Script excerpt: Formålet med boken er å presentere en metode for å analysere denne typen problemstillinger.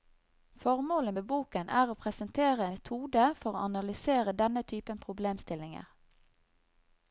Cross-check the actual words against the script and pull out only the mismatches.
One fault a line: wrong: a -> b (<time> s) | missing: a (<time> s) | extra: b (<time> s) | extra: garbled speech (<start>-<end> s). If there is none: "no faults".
missing: en (2.7 s)